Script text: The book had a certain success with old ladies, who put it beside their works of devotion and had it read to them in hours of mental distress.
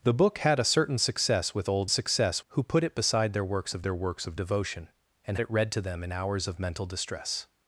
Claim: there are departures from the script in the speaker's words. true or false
true